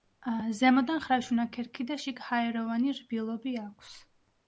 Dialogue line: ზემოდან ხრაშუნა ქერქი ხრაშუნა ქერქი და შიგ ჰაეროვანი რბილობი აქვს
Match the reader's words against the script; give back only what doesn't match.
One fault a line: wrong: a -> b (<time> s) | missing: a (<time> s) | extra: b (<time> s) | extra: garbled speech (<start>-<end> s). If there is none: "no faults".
missing: ხრაშუნა ქერქი (1.9 s)